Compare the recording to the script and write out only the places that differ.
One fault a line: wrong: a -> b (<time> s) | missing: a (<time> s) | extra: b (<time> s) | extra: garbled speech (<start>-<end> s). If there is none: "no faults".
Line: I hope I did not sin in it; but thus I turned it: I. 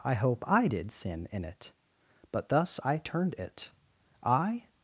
missing: not (0.9 s)